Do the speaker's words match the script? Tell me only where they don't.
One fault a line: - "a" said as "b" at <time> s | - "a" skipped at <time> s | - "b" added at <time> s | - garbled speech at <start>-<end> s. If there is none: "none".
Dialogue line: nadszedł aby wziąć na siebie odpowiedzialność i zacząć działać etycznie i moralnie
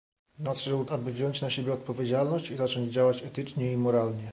none